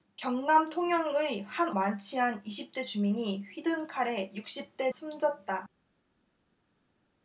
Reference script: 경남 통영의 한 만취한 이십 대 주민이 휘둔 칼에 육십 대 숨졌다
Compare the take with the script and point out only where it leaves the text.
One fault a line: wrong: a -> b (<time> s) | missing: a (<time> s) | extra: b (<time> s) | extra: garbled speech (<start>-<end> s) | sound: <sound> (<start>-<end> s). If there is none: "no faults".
no faults